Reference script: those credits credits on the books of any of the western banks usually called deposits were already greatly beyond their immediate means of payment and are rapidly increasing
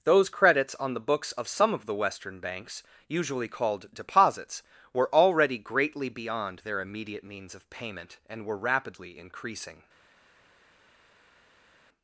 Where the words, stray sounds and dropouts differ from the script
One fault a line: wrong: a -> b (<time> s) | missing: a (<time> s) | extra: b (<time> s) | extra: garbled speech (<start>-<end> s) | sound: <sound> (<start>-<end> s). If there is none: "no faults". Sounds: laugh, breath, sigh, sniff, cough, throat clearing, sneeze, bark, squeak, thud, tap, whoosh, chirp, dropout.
missing: credits (0.7 s)
wrong: any -> some (1.5 s)
wrong: are -> were (8.4 s)